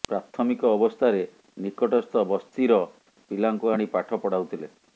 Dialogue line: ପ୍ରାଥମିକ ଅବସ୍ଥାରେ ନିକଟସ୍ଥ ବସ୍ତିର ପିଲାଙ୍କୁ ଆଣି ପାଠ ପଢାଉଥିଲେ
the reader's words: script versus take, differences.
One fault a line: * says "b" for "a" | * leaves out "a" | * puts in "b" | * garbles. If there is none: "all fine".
all fine